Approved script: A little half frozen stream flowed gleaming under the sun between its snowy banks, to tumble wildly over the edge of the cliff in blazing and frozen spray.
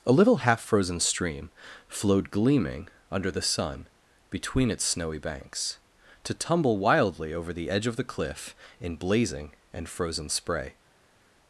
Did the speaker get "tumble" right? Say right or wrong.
right